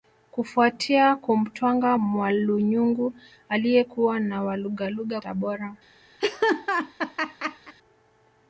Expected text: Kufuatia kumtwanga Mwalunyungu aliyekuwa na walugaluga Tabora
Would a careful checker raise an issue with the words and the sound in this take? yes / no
yes